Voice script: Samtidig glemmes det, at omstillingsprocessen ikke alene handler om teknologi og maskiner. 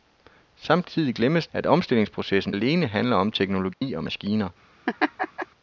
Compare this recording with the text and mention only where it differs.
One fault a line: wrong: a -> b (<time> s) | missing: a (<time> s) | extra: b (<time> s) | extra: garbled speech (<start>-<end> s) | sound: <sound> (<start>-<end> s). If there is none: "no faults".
missing: det (1.5 s)
missing: ikke (2.5 s)
sound: dropout (3.7-3.8 s)
sound: laugh (4.9-5.5 s)